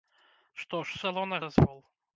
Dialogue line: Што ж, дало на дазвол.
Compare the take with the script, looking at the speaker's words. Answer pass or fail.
pass